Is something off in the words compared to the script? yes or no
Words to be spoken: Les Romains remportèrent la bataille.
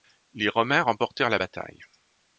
no